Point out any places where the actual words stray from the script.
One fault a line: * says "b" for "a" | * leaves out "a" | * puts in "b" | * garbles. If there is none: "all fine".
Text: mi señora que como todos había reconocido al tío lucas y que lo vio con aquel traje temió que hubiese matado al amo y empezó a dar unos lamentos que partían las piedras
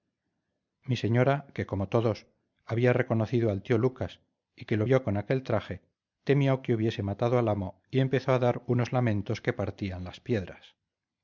all fine